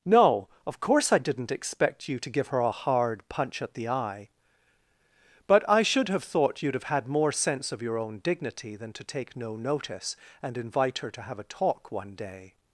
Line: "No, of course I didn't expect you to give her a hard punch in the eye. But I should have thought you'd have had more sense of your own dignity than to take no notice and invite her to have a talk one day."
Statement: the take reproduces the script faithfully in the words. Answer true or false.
false